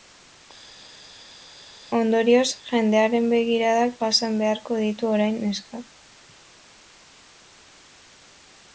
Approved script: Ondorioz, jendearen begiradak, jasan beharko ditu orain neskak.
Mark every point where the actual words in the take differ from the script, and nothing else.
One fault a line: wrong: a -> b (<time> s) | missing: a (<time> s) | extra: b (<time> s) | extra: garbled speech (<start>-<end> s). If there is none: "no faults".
no faults